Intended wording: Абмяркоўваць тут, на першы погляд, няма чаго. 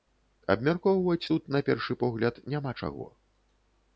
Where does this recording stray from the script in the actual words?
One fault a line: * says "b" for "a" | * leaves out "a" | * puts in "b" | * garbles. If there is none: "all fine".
all fine